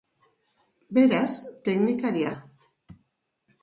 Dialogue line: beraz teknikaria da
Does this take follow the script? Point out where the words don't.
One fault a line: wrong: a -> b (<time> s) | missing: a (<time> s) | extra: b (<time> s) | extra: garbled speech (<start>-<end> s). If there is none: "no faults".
no faults